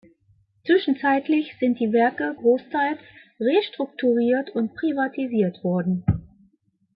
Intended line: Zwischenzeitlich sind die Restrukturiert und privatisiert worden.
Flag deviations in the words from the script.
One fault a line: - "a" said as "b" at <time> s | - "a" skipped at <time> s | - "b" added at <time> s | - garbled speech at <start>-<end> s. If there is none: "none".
- "Werke großteils" added at 1.9 s